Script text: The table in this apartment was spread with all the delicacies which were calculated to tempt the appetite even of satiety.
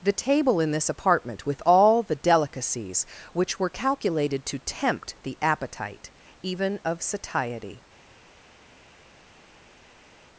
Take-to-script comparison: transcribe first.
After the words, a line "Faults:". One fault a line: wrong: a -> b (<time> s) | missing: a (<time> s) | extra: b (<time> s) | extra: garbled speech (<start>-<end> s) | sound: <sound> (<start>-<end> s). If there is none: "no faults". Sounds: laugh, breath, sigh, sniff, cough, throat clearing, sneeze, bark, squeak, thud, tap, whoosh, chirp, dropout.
The table in this apartment with all the delicacies which were calculated to tempt the appetite even of satiety.
Faults:
missing: was spread (1.4 s)